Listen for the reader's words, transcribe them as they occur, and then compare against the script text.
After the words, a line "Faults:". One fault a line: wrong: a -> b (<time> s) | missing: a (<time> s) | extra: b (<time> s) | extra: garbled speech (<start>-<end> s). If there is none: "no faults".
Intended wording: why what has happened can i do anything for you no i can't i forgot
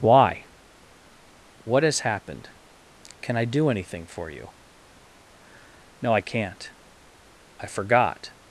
why what has happened can i do anything for you no i can't i forgot
Faults:
no faults